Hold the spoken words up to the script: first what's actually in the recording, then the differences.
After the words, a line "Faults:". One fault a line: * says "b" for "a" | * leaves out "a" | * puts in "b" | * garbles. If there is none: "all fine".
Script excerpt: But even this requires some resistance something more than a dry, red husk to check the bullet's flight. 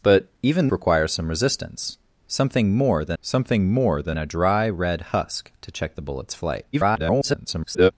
But even requires some resistance something more than something more than a dry, red husk to check the bullet's flight. [garbled]
Faults:
* leaves out "this"
* puts in "something more than"
* garbles